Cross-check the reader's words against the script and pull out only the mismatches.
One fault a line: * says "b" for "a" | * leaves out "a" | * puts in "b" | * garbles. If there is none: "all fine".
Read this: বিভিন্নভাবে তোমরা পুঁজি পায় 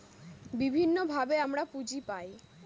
* says "আমরা" for "তোমরা"